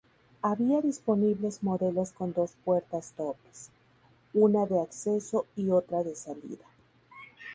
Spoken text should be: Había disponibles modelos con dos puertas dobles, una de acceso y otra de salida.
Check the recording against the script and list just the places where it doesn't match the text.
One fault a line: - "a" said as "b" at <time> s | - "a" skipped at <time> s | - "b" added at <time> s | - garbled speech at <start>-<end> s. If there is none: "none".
none